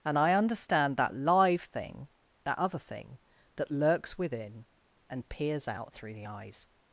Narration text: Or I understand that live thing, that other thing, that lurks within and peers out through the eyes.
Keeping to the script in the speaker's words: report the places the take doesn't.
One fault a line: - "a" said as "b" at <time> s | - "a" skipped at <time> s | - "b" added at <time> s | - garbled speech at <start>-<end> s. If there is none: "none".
- "Or" said as "And" at 0.0 s